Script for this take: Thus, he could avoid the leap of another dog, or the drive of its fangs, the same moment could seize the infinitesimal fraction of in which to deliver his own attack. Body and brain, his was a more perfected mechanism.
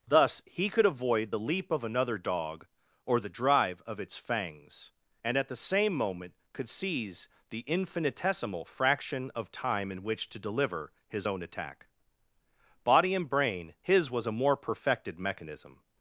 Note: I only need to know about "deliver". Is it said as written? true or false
true